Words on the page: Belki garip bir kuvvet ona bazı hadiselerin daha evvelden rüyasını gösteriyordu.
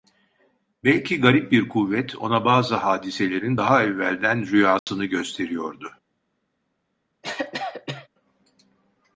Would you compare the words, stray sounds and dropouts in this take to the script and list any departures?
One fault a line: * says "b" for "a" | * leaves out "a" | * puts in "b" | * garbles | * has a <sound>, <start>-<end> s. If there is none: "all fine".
* has a dropout, 4.8-4.9 s
* has a cough, 7.2-8.1 s